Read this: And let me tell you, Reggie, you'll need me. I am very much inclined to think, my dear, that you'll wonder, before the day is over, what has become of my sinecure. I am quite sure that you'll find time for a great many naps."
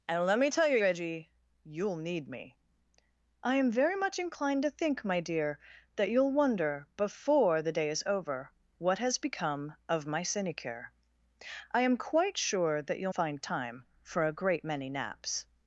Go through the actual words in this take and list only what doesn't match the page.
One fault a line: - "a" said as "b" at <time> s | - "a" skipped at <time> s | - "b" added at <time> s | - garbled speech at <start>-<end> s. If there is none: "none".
none